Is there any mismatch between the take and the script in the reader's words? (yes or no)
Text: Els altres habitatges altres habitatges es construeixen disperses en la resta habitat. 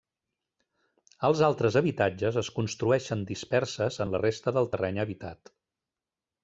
yes